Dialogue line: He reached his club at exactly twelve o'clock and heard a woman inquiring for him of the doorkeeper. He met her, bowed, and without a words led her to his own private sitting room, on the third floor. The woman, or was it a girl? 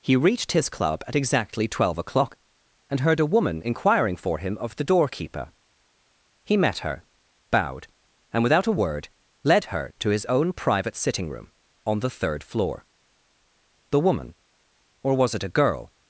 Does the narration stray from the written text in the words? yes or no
yes